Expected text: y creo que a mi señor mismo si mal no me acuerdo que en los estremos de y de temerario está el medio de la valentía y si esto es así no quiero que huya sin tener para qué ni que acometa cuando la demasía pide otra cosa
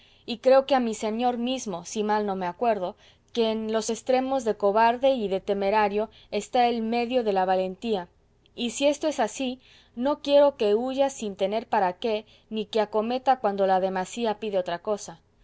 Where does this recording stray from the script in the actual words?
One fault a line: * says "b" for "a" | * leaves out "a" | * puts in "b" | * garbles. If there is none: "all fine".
* puts in "cobarde"